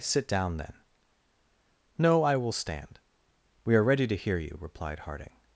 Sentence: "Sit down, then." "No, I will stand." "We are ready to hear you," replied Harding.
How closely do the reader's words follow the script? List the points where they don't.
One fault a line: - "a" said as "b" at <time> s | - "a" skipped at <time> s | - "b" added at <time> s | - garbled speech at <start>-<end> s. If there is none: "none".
none